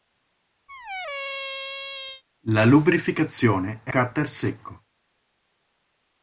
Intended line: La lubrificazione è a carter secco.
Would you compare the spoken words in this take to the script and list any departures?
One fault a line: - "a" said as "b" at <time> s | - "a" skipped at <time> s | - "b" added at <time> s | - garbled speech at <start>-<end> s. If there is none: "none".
- "a" skipped at 3.9 s